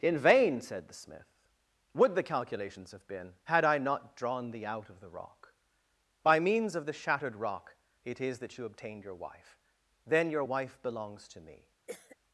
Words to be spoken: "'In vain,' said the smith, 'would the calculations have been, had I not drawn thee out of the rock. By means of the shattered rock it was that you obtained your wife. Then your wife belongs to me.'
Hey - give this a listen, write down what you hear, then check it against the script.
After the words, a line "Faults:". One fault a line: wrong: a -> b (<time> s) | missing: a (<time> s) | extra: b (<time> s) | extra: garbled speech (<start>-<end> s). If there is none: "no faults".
"'In vain,' said the smith, 'would the calculations have been, had I not drawn thee out of the rock. By means of the shattered rock it is that you obtained your wife. Then your wife belongs to me.'
Faults:
wrong: was -> is (8.2 s)